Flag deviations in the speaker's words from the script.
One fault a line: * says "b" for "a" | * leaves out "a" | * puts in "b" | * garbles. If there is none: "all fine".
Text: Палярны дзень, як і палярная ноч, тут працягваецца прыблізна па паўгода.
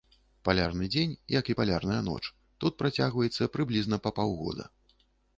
all fine